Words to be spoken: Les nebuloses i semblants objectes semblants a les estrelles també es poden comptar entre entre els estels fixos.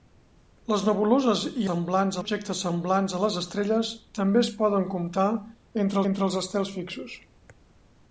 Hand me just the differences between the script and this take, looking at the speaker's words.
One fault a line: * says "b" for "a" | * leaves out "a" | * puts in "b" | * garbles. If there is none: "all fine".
all fine